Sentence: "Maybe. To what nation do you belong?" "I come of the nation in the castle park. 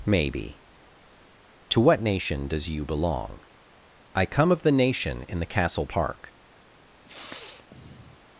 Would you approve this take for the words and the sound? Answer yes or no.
no